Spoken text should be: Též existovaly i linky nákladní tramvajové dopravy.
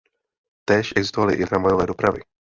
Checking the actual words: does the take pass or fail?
fail